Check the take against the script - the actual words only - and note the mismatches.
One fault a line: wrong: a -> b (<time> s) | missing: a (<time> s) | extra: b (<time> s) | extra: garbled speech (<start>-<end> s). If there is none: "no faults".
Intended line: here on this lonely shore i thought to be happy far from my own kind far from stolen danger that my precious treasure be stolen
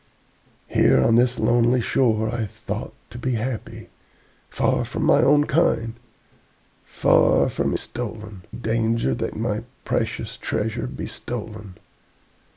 no faults